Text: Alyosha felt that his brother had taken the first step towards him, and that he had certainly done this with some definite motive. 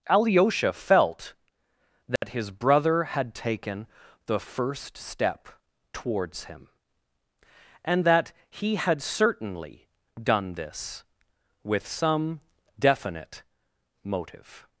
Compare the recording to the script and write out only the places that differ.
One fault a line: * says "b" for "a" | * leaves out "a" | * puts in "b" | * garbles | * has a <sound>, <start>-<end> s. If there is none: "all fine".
* has a dropout, 2.2-2.2 s